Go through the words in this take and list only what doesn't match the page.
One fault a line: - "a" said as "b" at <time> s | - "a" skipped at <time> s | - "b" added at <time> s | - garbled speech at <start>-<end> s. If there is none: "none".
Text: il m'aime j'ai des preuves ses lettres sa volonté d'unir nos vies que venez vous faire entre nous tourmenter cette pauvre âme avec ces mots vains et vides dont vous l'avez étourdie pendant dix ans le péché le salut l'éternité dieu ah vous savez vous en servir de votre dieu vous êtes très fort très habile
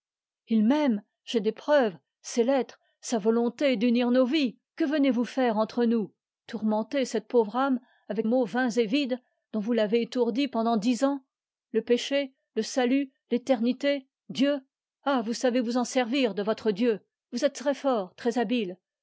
- "ces" skipped at 8.3 s